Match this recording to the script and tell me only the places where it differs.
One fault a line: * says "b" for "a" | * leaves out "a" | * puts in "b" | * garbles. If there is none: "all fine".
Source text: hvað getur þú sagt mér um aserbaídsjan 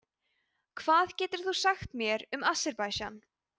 all fine